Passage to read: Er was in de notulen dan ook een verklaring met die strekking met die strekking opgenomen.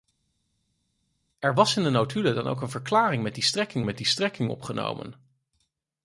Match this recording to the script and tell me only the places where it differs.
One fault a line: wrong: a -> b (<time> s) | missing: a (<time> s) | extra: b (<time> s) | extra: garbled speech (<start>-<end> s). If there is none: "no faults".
no faults